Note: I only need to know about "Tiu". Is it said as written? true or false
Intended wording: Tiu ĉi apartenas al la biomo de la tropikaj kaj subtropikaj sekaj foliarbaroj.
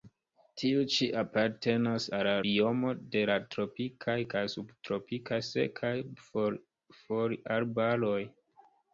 true